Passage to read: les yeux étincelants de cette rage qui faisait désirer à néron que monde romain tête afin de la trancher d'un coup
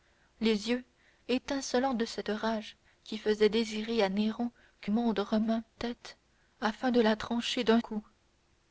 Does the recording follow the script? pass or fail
pass